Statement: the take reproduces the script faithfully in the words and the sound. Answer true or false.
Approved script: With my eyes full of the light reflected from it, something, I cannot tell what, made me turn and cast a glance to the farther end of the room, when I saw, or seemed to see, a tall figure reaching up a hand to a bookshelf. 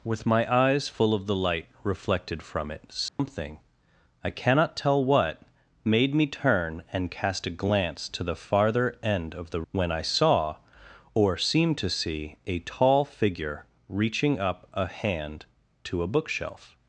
false